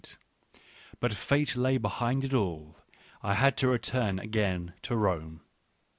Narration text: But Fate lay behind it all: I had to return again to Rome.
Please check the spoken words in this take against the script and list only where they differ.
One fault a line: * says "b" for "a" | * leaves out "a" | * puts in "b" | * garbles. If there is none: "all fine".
all fine